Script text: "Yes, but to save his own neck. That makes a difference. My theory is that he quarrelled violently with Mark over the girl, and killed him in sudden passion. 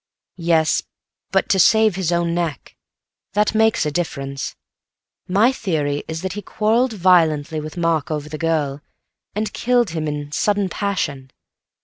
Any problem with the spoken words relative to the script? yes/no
no